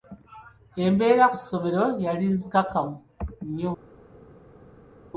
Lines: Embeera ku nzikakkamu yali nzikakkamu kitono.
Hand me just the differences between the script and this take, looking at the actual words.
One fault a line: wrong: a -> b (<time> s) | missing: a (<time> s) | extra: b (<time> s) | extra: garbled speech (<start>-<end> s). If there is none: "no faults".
wrong: nzikakkamu -> ssomero (1.4 s)
wrong: kitono -> nnyo (3.5 s)